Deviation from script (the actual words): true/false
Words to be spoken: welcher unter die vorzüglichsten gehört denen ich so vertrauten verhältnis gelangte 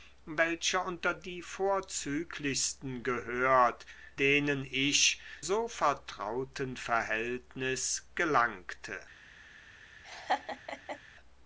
false